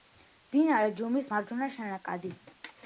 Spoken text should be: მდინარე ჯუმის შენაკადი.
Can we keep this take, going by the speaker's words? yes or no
no